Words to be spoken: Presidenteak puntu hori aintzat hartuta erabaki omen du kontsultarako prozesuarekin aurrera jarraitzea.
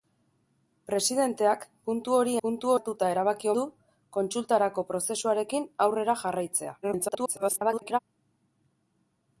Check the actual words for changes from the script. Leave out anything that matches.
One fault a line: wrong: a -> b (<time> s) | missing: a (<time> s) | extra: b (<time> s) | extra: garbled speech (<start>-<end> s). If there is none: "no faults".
wrong: aintzat -> puntu (2.5 s)
missing: omen (3.5 s)
extra: garbled speech (6.8-8.0 s)